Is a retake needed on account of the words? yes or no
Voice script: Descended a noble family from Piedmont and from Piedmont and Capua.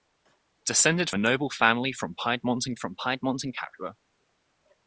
no